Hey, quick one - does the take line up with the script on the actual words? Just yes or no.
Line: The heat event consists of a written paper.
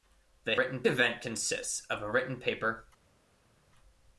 no